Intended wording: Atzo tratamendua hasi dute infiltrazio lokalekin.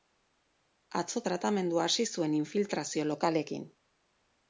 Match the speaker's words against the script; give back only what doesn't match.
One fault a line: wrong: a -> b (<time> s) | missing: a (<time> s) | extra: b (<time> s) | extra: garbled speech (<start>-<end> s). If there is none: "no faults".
wrong: dute -> zuen (2.1 s)